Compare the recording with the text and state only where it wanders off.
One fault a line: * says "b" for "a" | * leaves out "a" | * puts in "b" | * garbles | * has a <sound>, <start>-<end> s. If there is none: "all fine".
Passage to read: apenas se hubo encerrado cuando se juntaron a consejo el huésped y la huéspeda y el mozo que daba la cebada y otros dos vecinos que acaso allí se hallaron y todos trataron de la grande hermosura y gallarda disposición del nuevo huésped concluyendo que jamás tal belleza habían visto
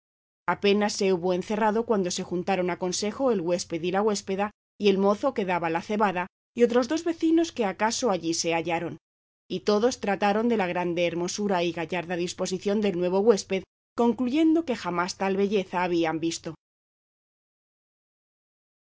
all fine